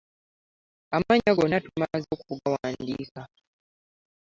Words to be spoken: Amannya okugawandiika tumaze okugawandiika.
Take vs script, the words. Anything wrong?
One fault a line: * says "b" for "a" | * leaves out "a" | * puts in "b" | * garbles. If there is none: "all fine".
* says "gonna" for "okugawandiika"